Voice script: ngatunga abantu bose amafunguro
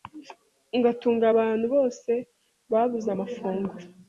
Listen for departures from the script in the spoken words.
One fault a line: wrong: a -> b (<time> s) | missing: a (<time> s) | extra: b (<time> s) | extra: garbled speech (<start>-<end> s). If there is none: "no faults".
extra: babuze (2.7 s)